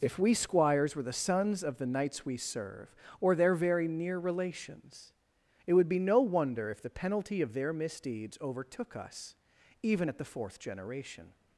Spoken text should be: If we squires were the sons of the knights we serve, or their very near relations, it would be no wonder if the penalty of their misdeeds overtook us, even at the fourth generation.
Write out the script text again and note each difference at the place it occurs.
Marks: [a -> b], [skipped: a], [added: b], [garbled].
If we squires were the sons of the knights we serve, or their very near relations, it would be no wonder if the penalty of their misdeeds overtook us, even at the fourth generation.